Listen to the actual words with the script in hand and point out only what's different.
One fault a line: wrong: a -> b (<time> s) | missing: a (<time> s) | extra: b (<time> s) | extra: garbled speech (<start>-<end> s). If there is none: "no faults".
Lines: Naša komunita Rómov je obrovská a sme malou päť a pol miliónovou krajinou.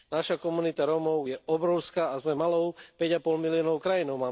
no faults